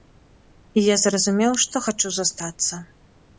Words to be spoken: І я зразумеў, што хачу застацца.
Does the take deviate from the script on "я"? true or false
false